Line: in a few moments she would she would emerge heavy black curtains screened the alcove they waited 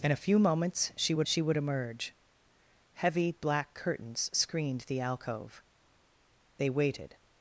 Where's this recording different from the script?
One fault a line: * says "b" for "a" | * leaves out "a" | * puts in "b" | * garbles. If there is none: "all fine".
all fine